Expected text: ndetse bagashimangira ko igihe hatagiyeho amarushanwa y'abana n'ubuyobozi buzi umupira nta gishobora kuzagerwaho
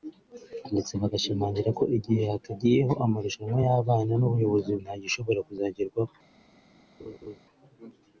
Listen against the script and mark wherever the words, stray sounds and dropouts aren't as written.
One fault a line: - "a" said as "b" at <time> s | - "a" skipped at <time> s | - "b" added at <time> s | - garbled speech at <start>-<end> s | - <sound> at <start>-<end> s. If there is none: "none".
- "buzi umupira" skipped at 4.7 s
- laugh at 7.0-7.4 s